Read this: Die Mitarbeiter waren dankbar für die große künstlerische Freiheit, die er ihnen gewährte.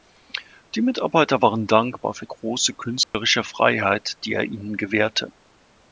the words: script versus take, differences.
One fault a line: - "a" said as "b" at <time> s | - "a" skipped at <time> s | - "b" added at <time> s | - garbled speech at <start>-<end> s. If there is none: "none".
- "die" skipped at 2.2 s